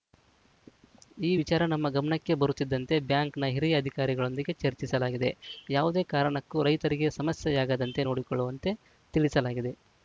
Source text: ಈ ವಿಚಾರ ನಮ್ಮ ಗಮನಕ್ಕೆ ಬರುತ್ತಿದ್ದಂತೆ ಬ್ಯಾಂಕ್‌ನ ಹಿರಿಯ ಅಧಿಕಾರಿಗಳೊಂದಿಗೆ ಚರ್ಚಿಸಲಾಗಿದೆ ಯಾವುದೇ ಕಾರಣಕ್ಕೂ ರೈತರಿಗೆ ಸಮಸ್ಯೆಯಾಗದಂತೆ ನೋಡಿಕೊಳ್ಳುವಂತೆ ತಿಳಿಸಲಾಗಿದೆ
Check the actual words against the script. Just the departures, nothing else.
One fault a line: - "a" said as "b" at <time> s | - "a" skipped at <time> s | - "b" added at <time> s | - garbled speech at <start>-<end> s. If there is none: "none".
none